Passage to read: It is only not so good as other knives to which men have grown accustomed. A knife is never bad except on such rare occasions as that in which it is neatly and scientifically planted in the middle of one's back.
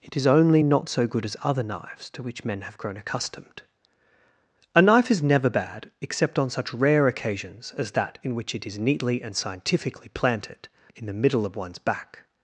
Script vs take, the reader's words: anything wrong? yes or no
no